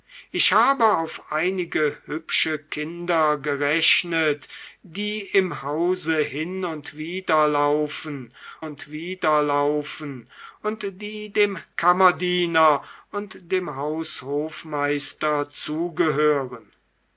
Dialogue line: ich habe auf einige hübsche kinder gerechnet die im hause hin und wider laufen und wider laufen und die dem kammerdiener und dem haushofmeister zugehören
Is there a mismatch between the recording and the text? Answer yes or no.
no